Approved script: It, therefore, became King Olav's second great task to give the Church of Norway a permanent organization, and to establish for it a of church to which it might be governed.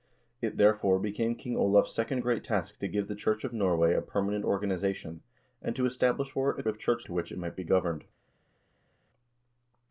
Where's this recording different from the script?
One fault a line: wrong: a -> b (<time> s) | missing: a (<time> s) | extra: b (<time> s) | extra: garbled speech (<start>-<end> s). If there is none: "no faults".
no faults